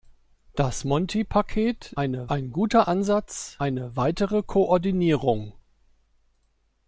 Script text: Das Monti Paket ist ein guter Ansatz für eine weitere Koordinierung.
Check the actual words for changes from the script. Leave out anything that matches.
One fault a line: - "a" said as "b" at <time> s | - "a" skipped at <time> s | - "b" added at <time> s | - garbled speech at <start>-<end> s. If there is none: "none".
- "ist" said as "eine" at 2.0 s
- "für" skipped at 3.6 s